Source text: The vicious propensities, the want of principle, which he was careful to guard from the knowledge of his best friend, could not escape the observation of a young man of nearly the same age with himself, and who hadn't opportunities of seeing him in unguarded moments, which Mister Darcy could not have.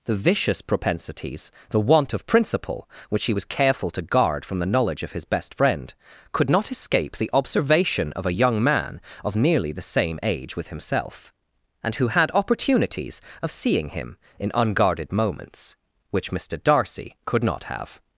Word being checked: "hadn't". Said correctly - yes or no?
no